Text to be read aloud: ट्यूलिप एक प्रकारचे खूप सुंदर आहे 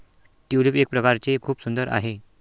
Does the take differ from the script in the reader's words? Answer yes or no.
no